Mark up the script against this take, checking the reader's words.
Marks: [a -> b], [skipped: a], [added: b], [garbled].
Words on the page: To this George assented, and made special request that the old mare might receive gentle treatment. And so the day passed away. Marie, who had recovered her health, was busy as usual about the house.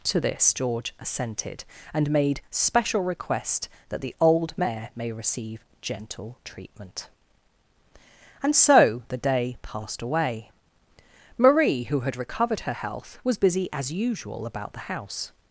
To this George assented, and made special request that the old mare [might -> may] receive gentle treatment. And so the day passed away. Marie, who had recovered her health, was busy as usual about the house.